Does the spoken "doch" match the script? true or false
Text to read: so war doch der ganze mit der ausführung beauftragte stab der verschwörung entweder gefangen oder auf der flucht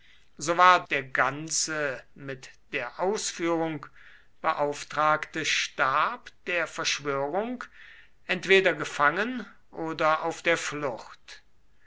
false